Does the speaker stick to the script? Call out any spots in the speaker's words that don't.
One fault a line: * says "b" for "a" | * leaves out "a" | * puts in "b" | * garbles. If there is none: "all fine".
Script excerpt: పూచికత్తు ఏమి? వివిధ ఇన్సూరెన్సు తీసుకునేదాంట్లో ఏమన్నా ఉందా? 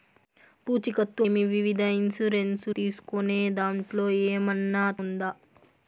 all fine